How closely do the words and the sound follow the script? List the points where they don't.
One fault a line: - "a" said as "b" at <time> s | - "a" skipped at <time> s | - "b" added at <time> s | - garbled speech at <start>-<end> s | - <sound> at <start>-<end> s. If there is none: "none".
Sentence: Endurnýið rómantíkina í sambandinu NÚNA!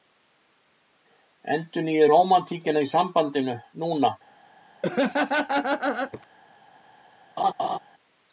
- laugh at 4.8-6.3 s
- laugh at 7.4-7.8 s